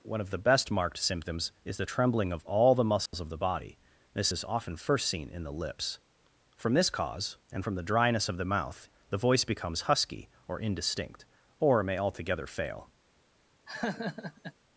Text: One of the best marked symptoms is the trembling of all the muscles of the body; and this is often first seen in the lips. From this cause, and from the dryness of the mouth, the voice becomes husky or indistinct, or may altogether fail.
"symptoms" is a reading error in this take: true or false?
false